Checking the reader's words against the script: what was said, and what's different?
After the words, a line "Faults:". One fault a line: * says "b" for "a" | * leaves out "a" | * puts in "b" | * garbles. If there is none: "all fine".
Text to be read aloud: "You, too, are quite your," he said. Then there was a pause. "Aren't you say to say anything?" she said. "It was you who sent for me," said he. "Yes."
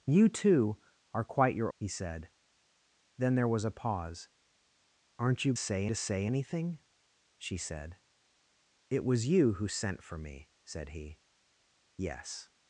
"You, too, are quite your," he said. Then there was a pause. "Aren't you say to say anything?" she said. "It was you who sent for me," said he. "Yes."
Faults:
all fine